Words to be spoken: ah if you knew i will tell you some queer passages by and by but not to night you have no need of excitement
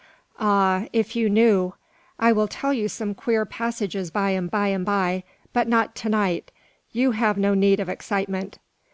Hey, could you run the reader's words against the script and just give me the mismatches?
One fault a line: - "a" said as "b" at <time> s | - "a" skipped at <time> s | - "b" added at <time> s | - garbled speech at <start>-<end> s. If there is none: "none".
- "and by" added at 4.7 s